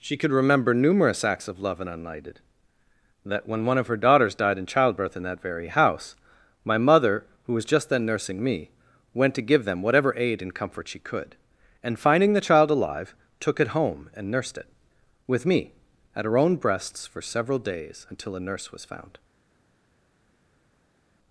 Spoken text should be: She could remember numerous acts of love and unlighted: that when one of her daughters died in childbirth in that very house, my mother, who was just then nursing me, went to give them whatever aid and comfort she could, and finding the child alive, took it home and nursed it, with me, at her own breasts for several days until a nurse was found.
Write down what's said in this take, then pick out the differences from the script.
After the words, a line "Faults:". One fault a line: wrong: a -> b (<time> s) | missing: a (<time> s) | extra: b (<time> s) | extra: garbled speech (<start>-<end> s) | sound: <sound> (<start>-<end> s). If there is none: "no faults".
She could remember numerous acts of love and unlighted: that when one of her daughters died in childbirth in that very house, my mother, who was just then nursing me, went to give them whatever aid and comfort she could, and finding the child alive, took it home and nursed it, with me, at her own breasts for several days until a nurse was found.
Faults:
no faults